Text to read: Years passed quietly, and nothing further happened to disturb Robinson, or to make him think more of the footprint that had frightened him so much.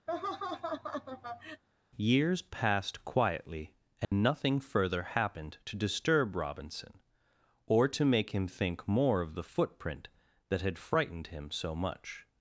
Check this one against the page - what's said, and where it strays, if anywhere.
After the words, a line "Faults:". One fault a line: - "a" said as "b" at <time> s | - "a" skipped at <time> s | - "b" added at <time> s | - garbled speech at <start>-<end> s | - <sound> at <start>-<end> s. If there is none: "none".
Years passed quietly, and nothing further happened to disturb Robinson, or to make him think more of the footprint that had frightened him so much.
Faults:
- laugh at 0.1-1.6 s
- dropout at 4.0-4.1 s